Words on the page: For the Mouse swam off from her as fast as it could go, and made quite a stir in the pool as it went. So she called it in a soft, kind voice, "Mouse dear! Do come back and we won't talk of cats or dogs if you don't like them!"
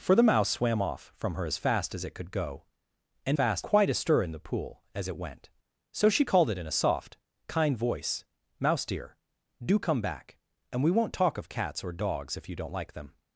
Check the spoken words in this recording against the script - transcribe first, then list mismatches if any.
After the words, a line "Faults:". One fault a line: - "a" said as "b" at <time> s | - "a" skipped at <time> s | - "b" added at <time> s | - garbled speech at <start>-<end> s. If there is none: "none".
For the Mouse swam off from her as fast as it could go, and fast quite a stir in the pool as it went. So she called it in a soft, kind voice, "Mouse dear! Do come back and we won't talk of cats or dogs if you don't like them!"
Faults:
- "made" said as "fast" at 3.3 s